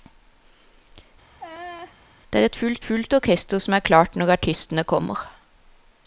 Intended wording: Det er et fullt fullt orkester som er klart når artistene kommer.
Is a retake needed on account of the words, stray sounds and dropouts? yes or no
yes